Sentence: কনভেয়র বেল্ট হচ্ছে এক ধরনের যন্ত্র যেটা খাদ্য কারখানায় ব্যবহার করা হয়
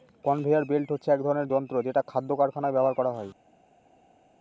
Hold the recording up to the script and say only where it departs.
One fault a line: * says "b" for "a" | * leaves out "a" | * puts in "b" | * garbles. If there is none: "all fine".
all fine